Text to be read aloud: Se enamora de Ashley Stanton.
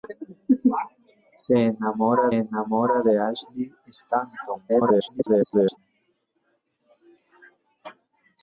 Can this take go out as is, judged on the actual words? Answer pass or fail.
fail